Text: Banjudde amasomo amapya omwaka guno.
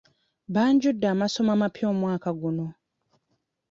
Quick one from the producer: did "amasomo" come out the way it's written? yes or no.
yes